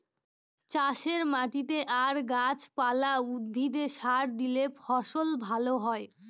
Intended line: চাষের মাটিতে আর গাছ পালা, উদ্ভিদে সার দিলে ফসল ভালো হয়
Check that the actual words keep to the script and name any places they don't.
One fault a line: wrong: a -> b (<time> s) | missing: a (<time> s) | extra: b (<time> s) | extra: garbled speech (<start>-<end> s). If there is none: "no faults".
no faults